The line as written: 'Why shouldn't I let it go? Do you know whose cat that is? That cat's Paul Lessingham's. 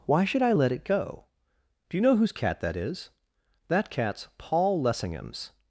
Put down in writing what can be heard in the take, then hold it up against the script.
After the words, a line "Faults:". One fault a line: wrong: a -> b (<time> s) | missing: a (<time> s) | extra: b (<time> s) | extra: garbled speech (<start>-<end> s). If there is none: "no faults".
'Why should I let it go? Do you know whose cat that is? That cat's Paul Lessingham's.
Faults:
wrong: shouldn't -> should (0.2 s)